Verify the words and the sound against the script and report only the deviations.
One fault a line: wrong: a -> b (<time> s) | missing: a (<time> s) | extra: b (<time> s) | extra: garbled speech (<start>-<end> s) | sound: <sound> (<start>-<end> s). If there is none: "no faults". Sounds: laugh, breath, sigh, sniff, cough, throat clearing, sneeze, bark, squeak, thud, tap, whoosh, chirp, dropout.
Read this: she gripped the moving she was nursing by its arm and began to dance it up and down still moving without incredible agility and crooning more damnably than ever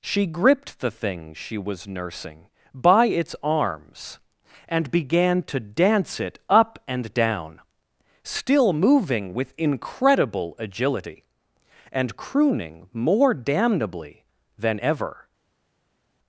wrong: moving -> thing (0.9 s)
wrong: arm -> arms (3.4 s)
wrong: without -> with (9.3 s)